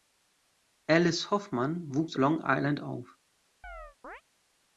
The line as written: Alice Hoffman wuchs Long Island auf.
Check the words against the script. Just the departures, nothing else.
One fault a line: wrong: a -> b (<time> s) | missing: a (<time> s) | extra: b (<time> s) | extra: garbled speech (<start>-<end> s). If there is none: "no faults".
no faults